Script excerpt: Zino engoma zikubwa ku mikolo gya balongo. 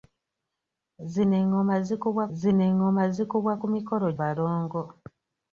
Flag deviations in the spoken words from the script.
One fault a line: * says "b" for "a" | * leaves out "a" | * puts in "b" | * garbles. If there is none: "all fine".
* puts in "zino engoma zikubwa"
* leaves out "gya"